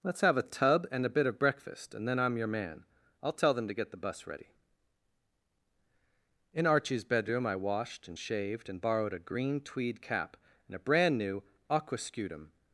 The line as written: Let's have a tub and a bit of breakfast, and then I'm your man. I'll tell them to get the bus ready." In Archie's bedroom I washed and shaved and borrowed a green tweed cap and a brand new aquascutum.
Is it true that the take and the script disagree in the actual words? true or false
false